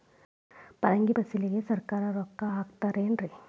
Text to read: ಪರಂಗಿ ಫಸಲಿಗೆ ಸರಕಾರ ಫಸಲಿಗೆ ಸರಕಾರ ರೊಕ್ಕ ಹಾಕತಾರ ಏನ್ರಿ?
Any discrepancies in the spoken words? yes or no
yes